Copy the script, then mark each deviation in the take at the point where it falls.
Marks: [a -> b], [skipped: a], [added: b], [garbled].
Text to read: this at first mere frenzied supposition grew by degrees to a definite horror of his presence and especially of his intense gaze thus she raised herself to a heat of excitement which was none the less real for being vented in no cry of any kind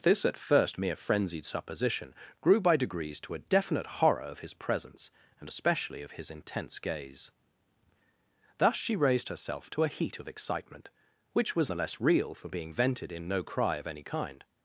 this at first mere frenzied supposition grew by degrees to a definite horror of his presence and especially of his intense gaze thus she raised herself to a heat of excitement which was [skipped: none] the less real for being vented in no cry of any kind